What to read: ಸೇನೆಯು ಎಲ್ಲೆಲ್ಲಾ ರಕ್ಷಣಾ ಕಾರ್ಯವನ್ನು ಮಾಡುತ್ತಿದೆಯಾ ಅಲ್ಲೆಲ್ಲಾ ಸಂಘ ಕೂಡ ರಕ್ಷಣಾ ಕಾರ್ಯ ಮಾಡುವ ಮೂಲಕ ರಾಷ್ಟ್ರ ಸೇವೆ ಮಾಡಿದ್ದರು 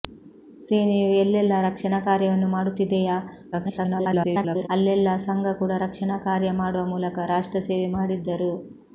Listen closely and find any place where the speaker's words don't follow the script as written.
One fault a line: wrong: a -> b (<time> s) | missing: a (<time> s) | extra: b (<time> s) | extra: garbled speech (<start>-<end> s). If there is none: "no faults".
extra: garbled speech (3.5-4.7 s)